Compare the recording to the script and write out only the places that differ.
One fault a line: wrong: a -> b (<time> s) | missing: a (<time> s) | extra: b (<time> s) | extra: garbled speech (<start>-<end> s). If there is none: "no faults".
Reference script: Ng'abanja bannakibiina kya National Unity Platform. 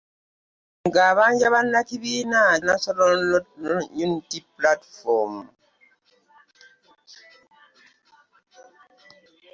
missing: kya (2.4 s)